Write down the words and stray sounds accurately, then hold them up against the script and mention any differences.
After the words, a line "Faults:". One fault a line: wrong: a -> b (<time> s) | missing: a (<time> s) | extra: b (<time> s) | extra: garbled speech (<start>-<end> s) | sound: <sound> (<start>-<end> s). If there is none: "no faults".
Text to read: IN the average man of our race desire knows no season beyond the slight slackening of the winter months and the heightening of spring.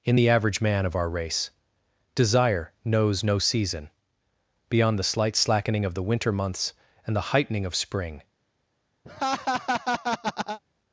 IN the average man of our race desire knows no season beyond the slight slackening of the winter months and the heightening of spring.
Faults:
sound: laugh (9.0-10.6 s)